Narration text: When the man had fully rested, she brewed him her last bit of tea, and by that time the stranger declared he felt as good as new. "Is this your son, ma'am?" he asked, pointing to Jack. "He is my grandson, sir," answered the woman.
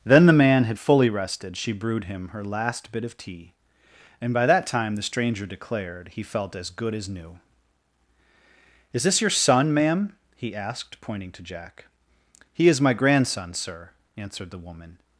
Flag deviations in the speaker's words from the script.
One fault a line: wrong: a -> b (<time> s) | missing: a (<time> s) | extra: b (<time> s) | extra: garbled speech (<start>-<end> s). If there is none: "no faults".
wrong: When -> Then (0.1 s)